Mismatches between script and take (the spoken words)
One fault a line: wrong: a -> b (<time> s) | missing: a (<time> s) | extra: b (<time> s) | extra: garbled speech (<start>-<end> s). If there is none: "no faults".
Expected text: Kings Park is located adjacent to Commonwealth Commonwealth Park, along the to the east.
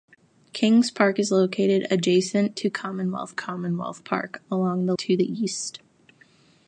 no faults